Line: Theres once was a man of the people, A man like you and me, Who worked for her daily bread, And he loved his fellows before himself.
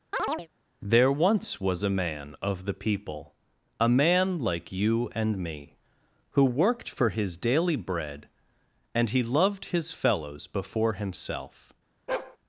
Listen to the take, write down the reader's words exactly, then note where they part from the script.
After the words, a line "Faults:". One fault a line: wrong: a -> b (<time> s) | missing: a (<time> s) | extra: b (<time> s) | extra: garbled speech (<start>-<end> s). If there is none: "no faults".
There once was a man of the people, A man like you and me, Who worked for his daily bread, And he loved his fellows before himself.
Faults:
wrong: Theres -> There (0.8 s)
wrong: her -> his (7.1 s)